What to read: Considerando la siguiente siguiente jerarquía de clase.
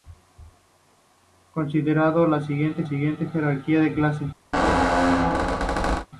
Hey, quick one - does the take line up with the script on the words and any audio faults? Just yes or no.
no